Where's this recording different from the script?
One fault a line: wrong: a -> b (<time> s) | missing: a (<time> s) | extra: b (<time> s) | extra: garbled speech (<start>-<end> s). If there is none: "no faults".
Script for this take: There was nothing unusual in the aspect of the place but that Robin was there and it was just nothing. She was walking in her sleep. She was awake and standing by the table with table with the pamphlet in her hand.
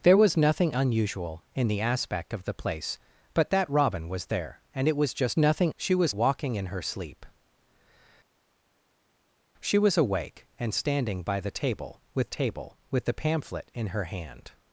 no faults